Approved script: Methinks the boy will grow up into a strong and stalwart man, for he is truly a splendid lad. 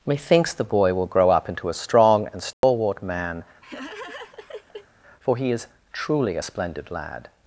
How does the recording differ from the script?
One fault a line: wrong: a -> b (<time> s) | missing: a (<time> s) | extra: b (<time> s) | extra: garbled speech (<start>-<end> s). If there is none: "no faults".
no faults